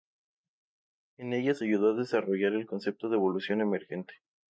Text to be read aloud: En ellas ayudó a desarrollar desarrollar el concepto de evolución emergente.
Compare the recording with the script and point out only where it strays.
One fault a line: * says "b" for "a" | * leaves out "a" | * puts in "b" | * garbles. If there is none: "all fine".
* leaves out "desarrollar"